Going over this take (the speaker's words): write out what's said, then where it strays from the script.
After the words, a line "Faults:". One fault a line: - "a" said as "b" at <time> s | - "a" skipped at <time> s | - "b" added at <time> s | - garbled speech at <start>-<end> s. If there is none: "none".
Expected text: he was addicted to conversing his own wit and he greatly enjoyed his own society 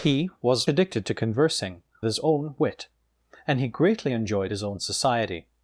he was addicted to conversing his own wit and he greatly enjoyed his own society
Faults:
none